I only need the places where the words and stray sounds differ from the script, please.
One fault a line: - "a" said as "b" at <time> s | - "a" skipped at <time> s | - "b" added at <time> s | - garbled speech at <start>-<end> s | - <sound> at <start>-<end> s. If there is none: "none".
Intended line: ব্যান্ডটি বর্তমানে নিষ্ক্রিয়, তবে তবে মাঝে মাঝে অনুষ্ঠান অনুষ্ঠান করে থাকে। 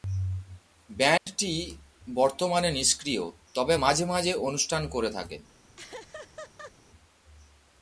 - dropout at 1.2-1.3 s
- "তবে" skipped at 3.7 s
- "অনুষ্ঠান" skipped at 4.8 s
- laugh at 5.8-6.7 s